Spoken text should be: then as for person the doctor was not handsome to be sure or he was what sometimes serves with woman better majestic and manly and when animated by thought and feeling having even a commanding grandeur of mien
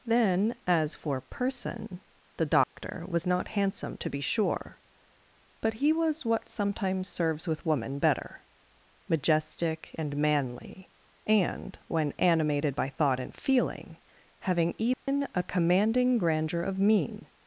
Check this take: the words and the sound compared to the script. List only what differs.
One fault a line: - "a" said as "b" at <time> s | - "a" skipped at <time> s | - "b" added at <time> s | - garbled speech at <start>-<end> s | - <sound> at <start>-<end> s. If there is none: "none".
- dropout at 2.6-2.8 s
- "or" said as "but" at 5.6 s
- dropout at 14.9-15.1 s